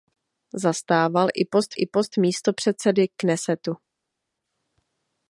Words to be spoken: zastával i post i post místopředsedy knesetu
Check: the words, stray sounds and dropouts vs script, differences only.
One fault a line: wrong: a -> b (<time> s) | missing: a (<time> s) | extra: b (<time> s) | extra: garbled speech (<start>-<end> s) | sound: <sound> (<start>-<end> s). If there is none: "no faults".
no faults